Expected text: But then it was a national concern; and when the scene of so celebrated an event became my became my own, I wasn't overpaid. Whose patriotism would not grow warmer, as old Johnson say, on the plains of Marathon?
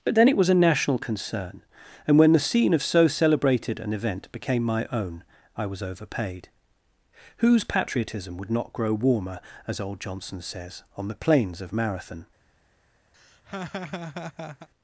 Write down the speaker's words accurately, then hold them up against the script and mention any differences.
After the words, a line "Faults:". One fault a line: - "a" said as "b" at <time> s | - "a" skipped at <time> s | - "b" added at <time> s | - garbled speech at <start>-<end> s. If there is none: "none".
But then it was a national concern; and when the scene of so celebrated an event became my own, I was overpaid. Whose patriotism would not grow warmer, as old Johnson says, on the plains of Marathon?
Faults:
- "became my" skipped at 4.9 s
- "wasn't" said as "was" at 5.7 s
- "say" said as "says" at 10.4 s